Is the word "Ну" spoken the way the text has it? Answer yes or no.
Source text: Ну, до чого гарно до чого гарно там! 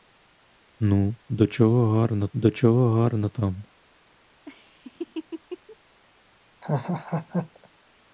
yes